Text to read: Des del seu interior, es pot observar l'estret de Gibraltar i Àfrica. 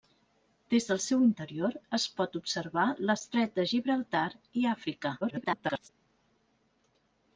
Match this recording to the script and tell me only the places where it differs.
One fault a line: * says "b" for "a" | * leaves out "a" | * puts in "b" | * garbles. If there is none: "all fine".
* garbles